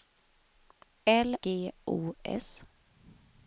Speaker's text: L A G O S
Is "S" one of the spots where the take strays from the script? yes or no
no